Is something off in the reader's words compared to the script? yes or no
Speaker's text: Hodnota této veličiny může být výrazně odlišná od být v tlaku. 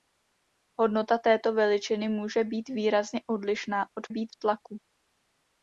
no